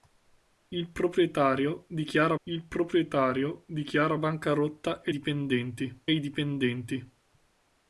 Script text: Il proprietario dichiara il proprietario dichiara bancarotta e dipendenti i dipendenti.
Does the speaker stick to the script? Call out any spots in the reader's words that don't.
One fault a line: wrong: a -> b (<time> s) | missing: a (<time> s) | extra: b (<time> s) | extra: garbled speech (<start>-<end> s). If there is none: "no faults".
no faults